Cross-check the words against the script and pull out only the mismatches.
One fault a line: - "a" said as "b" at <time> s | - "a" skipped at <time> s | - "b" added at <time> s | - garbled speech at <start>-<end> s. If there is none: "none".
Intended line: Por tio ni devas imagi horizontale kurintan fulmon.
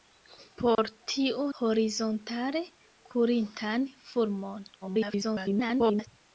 - "ni devas imagi" skipped at 1.4 s
- garbled speech at 4.8-6.1 s